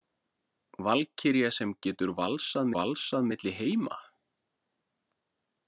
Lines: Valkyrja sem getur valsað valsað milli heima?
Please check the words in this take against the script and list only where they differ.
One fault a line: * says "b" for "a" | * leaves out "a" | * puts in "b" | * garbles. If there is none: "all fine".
all fine